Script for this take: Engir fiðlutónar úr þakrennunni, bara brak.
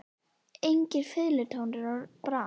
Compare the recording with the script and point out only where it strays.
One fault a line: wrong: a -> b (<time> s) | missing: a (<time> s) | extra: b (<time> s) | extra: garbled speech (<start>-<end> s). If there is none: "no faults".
missing: úr þakrennunni bara (2.0 s)